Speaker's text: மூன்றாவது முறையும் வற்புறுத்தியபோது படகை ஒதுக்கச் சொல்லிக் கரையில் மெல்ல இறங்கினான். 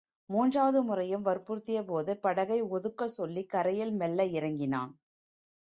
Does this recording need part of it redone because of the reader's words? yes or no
no